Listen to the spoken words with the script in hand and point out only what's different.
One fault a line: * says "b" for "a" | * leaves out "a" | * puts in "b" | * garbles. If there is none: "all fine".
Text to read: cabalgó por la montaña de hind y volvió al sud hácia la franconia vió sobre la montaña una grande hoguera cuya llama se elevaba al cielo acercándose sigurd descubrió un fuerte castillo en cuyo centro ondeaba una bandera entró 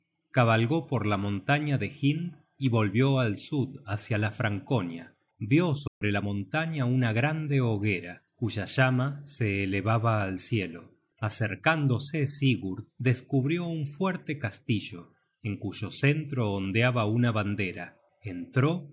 all fine